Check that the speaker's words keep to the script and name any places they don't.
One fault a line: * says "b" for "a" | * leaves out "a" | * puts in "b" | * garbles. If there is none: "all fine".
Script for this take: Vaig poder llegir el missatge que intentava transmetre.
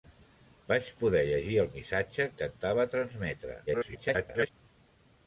* leaves out "que"
* garbles